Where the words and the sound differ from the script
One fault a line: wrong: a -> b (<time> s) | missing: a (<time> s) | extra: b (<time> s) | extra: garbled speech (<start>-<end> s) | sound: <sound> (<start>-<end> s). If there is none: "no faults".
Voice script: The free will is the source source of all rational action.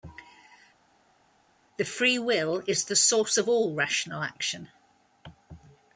missing: source (3.4 s)